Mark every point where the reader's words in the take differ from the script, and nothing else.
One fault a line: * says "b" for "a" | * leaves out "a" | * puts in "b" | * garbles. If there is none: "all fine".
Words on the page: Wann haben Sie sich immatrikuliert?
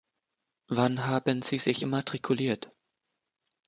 all fine